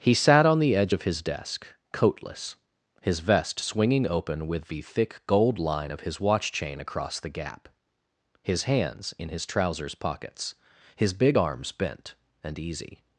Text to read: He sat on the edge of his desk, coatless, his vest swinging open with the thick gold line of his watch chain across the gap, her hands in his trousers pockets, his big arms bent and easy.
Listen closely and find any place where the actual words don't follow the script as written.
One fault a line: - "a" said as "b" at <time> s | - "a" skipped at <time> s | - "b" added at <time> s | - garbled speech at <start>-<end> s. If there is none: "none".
- "her" said as "his" at 8.4 s